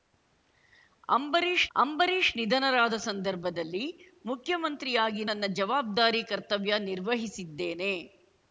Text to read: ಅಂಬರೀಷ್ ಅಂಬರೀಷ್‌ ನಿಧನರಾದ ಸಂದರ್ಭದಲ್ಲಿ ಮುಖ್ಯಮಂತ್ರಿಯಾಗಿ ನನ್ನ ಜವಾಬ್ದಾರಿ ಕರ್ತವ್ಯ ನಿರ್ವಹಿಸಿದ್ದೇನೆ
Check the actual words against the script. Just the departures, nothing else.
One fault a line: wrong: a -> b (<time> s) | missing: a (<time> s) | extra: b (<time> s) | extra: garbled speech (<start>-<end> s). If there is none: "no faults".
no faults